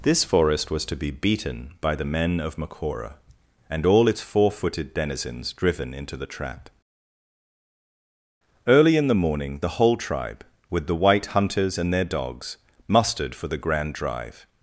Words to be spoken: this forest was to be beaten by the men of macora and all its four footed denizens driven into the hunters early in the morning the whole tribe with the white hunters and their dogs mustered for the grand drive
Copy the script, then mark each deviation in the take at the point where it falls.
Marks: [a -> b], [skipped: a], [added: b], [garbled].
this forest was to be beaten by the men of macora and all its four footed denizens driven into the [hunters -> trap] early in the morning the whole tribe with the white hunters and their dogs mustered for the grand drive